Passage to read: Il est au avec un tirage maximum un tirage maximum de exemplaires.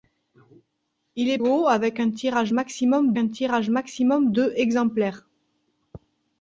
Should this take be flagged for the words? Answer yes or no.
no